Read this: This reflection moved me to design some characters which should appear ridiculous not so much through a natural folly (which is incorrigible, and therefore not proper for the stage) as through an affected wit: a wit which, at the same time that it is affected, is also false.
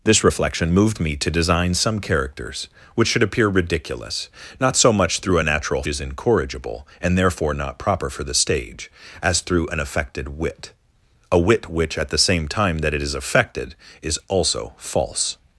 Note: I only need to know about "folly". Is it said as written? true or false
false